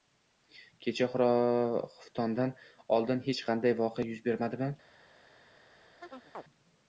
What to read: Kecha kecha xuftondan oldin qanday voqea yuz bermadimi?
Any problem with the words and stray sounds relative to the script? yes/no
yes